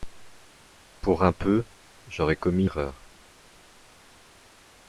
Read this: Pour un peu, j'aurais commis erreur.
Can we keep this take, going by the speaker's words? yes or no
yes